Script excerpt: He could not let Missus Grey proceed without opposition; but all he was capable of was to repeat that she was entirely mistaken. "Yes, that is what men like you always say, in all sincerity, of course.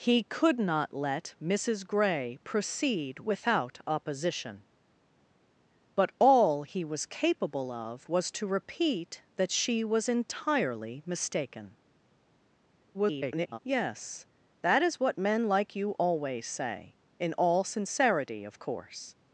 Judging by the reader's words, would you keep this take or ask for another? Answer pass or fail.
fail